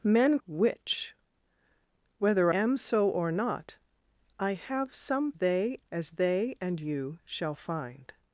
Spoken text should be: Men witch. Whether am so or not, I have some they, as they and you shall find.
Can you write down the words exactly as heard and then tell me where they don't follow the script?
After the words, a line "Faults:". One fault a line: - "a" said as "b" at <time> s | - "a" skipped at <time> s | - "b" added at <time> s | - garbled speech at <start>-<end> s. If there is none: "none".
Men witch. Whether am so or not, I have some they, as they and you shall find.
Faults:
none